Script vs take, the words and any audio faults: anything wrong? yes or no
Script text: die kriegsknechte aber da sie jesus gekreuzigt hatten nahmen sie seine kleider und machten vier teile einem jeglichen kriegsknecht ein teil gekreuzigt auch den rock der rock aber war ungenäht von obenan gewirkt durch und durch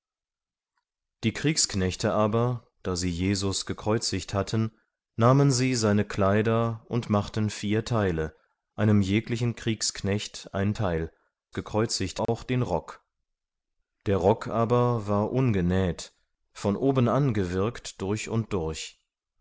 yes